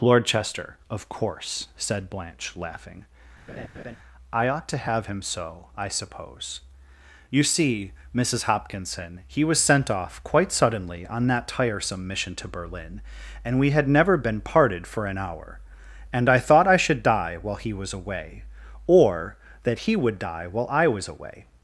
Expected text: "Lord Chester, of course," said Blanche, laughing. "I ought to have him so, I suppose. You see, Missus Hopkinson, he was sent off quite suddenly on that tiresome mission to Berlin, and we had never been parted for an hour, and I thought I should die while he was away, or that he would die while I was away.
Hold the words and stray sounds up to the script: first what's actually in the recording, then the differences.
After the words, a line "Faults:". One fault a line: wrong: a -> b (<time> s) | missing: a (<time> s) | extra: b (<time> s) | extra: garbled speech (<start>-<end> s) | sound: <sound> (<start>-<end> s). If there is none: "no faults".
"Lord Chester, of course," said Blanche, laughing. "I ought to have him so, I suppose. You see, Missus Hopkinson, he was sent off quite suddenly on that tiresome mission to Berlin, and we had never been parted for an hour, and I thought I should die while he was away, or that he would die while I was away.
Faults:
sound: laugh (3.5-4.0 s)